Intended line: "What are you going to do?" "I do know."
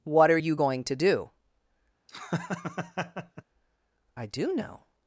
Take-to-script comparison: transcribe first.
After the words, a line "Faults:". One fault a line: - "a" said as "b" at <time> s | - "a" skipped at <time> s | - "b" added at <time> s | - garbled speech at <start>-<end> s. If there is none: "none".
"What are you going to do?" "I do know."
Faults:
none